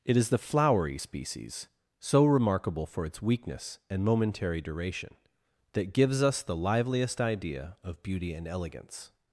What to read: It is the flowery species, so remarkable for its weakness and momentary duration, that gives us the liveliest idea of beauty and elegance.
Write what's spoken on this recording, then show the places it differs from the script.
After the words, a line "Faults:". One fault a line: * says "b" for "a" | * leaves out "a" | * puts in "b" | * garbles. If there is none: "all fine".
It is the flowery species, so remarkable for its weakness and momentary duration, that gives us the liveliest idea of beauty and elegance.
Faults:
all fine